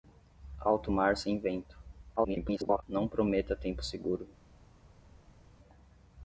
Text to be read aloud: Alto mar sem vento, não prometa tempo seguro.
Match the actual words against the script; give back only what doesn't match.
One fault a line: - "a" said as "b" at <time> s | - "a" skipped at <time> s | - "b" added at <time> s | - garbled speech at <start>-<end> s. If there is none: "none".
- garbled speech at 2.2-2.8 s